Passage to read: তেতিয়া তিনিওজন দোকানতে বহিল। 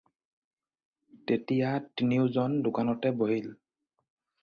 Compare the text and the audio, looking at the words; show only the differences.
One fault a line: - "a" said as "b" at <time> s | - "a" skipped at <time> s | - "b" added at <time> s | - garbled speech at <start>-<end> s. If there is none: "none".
none